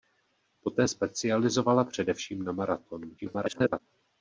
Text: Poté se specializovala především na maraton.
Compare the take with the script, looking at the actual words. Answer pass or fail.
fail